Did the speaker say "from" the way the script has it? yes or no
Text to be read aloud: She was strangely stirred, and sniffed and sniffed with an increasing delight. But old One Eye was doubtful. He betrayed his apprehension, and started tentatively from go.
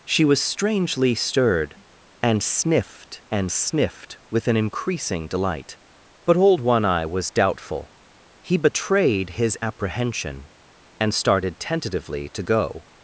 no